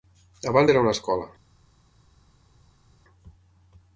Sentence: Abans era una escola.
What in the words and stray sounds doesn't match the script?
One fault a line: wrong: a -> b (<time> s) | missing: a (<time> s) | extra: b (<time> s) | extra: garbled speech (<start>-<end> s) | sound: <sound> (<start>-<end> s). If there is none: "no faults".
no faults